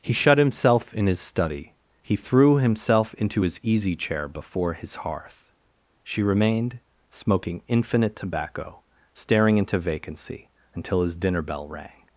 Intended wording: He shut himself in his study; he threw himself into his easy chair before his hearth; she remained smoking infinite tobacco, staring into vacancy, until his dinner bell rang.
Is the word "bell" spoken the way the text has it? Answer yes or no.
yes